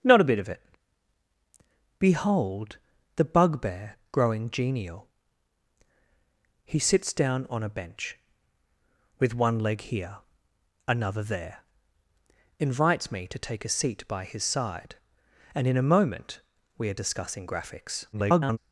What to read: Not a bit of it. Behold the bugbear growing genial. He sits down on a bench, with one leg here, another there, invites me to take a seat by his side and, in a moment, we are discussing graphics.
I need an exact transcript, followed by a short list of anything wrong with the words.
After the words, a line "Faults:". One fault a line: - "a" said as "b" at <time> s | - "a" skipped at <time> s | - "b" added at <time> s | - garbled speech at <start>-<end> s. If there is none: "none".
Not a bit of it. Behold the bugbear growing genial. He sits down on a bench, with one leg here, another there, invites me to take a seat by his side and, in a moment, we are discussing graphics. [garbled]
Faults:
- garbled speech at 18.1-18.6 s